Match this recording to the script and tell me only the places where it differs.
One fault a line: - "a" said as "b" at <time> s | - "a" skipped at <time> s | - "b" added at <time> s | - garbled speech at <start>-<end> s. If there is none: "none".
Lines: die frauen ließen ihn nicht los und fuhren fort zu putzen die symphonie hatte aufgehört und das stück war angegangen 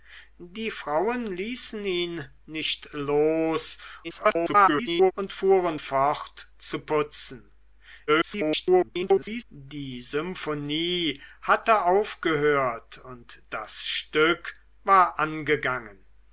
- garbled speech at 4.0-5.1 s
- garbled speech at 8.1-9.4 s